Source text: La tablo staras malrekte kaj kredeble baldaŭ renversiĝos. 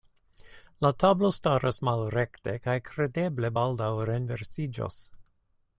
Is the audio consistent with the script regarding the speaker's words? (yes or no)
yes